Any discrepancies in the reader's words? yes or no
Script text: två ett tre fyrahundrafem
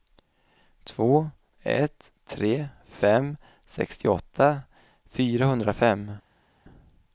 yes